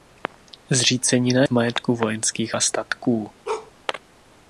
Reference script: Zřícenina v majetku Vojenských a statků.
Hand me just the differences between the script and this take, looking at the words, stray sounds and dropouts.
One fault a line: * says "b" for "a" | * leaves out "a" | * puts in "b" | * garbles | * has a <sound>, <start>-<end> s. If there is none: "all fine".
* has a bark, 3.4-3.7 s